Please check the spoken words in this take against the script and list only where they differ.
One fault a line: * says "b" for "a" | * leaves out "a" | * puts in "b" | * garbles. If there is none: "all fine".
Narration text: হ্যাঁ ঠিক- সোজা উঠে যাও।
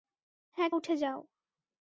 * leaves out "ঠিক সোজা"